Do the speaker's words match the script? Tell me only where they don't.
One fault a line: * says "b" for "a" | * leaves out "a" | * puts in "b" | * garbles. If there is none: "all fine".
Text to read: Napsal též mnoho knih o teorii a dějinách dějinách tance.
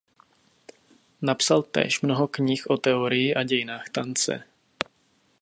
* leaves out "dějinách"